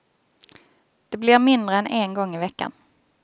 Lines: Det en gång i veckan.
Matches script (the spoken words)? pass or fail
fail